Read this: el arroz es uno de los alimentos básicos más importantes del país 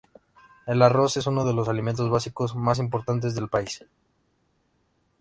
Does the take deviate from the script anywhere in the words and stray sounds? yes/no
no